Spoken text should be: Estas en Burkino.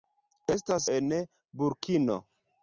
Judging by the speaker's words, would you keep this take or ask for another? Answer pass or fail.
pass